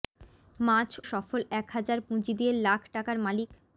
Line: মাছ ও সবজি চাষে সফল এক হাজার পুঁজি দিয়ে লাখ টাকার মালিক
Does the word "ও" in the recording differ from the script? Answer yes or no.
yes